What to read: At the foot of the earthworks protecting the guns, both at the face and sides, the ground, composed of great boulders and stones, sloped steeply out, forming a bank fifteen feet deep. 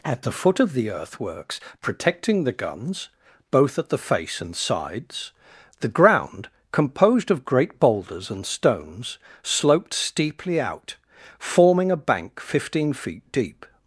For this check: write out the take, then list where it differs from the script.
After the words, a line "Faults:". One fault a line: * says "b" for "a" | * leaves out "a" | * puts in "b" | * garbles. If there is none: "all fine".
At the foot of the earthworks protecting the guns, both at the face and sides, the ground, composed of great boulders and stones, sloped steeply out, forming a bank fifteen feet deep.
Faults:
all fine